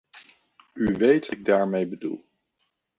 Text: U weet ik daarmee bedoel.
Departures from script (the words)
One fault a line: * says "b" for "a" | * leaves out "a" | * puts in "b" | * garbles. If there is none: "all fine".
all fine